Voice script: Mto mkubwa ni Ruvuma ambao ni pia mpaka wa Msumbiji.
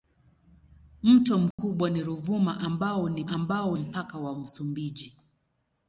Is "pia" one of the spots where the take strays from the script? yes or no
yes